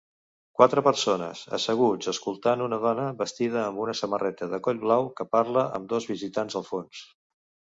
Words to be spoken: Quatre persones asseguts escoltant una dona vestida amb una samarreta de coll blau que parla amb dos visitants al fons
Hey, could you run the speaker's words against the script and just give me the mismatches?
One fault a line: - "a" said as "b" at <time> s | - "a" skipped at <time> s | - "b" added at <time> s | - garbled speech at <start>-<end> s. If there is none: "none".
none